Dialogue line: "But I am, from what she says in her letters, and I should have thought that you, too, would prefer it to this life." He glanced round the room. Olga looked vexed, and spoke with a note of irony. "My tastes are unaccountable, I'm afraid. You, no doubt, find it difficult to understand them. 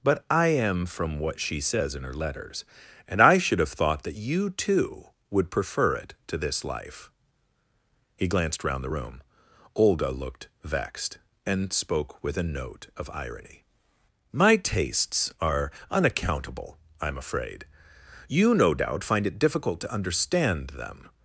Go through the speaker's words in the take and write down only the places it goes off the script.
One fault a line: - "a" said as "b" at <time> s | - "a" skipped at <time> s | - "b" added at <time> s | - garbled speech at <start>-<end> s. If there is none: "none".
none